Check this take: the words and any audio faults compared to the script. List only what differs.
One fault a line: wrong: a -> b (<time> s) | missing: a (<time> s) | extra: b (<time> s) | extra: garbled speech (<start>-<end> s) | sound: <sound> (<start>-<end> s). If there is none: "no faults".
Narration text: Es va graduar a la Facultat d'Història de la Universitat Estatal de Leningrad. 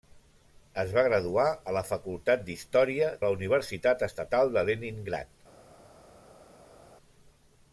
missing: de (3.1 s)